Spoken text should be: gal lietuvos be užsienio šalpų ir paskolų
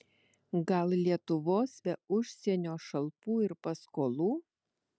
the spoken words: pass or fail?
pass